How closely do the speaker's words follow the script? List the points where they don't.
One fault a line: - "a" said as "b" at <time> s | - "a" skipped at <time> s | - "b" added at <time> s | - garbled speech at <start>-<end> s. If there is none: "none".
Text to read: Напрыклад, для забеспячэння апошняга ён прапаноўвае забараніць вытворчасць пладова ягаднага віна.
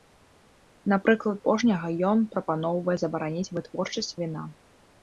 - "для забеспячэння" skipped at 1.4 s
- "пладова ягаднага" skipped at 4.1 s